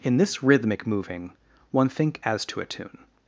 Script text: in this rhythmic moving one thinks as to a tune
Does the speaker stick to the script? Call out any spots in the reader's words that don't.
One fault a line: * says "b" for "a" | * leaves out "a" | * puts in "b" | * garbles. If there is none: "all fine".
* says "think" for "thinks"